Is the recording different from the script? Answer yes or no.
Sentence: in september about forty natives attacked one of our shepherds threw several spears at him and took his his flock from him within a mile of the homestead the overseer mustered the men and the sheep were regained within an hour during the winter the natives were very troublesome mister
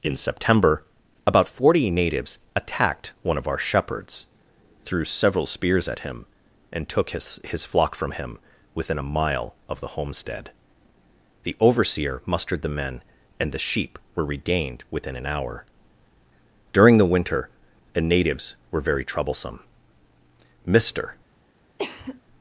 no